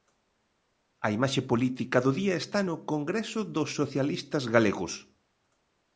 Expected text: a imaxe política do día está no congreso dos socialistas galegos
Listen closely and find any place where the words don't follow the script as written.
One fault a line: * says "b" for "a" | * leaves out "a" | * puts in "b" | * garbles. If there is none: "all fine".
all fine